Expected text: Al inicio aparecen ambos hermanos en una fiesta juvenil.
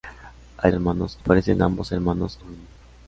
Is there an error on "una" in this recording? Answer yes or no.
yes